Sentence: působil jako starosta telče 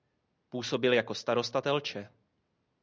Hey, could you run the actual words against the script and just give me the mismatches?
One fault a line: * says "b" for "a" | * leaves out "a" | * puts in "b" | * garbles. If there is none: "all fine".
all fine